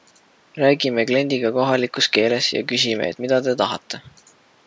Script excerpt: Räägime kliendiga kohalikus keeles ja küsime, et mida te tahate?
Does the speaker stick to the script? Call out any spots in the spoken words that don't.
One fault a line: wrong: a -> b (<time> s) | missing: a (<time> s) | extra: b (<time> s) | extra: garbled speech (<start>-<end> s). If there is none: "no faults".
no faults